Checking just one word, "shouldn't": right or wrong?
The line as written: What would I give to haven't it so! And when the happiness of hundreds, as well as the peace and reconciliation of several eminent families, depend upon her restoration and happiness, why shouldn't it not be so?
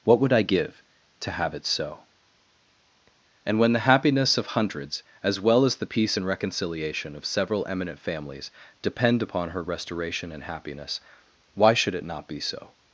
wrong